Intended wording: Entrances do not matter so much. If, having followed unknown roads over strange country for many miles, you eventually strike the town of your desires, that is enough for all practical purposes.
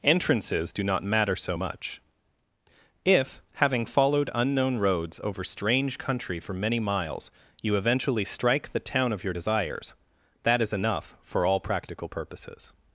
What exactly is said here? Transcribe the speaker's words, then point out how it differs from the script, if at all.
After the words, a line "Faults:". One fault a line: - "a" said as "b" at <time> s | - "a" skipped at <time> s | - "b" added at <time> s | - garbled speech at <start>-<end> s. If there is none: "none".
Entrances do not matter so much. If, having followed unknown roads over strange country for many miles, you eventually strike the town of your desires, that is enough for all practical purposes.
Faults:
none